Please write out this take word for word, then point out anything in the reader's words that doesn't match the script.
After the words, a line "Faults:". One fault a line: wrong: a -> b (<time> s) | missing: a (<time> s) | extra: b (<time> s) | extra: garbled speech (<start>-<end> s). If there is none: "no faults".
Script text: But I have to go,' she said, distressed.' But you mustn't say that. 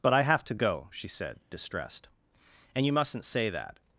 But I have to go,' she said, distressed.' And you mustn't say that.
Faults:
wrong: But -> And (2.8 s)